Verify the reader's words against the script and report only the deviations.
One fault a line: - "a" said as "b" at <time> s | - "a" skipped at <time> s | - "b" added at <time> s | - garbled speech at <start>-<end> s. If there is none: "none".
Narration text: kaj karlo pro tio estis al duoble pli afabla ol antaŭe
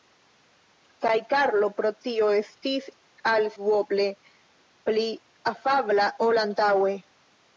none